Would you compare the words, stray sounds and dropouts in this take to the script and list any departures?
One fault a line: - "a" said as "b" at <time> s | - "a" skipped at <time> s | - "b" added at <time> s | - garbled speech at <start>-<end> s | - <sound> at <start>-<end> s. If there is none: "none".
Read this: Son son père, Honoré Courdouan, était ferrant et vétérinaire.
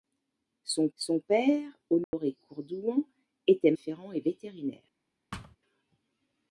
- dropout at 2.0-2.1 s
- thud at 5.3-5.6 s